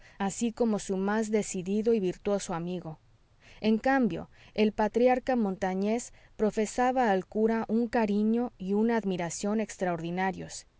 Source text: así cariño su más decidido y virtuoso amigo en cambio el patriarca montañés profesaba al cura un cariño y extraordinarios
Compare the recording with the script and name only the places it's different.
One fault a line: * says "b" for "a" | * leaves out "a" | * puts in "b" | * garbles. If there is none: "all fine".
* says "como" for "cariño"
* puts in "una admiración"